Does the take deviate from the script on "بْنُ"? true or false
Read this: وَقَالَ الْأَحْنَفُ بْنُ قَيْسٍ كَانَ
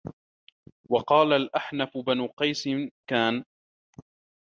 false